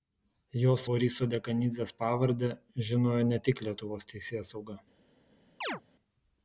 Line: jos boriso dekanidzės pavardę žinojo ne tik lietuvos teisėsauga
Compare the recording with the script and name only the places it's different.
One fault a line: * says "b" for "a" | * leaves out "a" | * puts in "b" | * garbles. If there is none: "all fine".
all fine